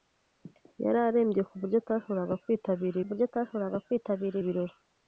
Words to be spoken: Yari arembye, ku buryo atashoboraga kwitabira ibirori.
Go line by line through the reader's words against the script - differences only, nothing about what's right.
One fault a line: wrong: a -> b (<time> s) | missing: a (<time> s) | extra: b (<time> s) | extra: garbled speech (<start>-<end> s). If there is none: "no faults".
extra: buryo atashoboraga kwitabira (3.1 s)